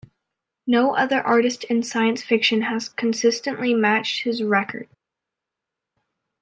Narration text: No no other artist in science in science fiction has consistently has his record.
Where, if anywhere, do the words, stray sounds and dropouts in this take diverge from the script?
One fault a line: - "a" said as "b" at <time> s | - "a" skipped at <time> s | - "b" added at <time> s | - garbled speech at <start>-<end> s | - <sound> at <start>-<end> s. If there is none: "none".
- "no" skipped at 0.9 s
- "in science" skipped at 2.2 s
- "has" said as "matched" at 3.7 s